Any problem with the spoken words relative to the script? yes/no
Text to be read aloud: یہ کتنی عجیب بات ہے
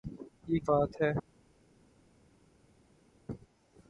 yes